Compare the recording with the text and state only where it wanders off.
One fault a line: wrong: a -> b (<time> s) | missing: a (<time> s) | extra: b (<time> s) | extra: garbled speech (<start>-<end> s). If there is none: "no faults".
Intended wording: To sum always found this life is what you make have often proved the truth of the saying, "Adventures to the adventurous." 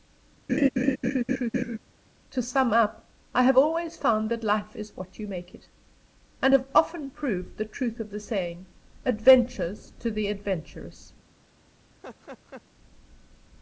extra: up I have (2.7 s)
wrong: this -> that (4.3 s)
extra: it and (5.5 s)